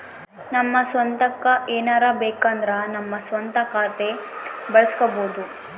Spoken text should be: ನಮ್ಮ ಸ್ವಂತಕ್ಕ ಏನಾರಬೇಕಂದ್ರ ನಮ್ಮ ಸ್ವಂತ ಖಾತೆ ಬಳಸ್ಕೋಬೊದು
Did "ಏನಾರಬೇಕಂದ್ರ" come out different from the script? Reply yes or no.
no